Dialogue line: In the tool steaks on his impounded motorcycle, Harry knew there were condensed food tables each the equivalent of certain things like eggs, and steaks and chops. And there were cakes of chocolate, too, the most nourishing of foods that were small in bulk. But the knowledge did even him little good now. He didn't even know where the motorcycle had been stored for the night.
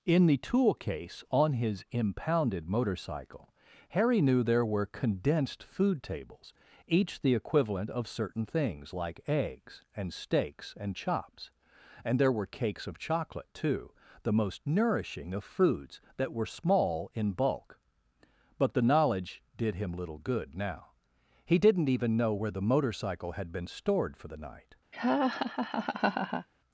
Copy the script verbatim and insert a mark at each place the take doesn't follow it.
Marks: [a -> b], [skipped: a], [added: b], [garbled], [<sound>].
In the tool [steaks -> case] on his impounded motorcycle, Harry knew there were condensed food tables each the equivalent of certain things like eggs, and steaks and chops. And there were cakes of chocolate, too, the most nourishing of foods that were small in bulk. But the knowledge did [skipped: even] him little good now. He didn't even know where the motorcycle had been stored for the night. [laugh]